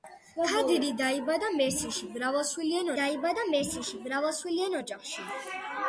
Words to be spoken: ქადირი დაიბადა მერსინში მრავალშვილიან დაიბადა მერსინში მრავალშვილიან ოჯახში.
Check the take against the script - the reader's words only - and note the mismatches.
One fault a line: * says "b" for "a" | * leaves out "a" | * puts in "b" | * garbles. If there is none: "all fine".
all fine